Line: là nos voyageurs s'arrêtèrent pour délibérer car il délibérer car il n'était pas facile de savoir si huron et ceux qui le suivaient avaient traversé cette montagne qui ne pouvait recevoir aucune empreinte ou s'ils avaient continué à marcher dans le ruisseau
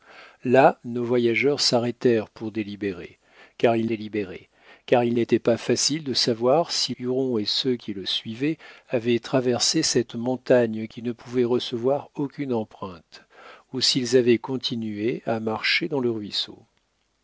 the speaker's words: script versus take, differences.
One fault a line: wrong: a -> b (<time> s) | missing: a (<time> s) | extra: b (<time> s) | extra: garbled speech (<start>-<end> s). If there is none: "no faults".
no faults